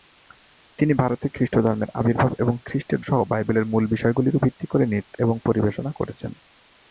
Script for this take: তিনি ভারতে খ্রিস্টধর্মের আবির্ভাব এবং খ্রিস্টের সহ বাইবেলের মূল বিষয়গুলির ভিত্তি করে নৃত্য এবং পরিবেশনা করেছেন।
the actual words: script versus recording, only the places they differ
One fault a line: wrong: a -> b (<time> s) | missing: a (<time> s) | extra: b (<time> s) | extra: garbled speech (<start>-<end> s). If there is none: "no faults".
no faults